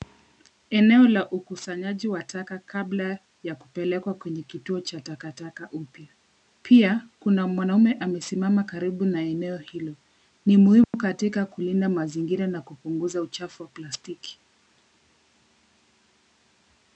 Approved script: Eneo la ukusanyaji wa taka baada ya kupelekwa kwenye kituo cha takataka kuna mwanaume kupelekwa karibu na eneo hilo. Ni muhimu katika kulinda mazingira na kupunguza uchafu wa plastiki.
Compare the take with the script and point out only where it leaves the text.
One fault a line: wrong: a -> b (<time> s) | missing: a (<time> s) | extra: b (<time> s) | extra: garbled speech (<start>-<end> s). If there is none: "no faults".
wrong: baada -> kabla (2.6 s)
extra: upya Pia (5.7 s)
wrong: kupelekwa -> amesimama (7.9 s)